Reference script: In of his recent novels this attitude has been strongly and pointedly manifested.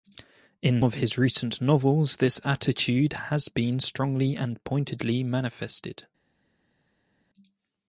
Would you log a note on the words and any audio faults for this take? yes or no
no